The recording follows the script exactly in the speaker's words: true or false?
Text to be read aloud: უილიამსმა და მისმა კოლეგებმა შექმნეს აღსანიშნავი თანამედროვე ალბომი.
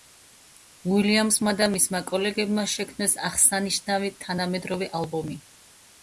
true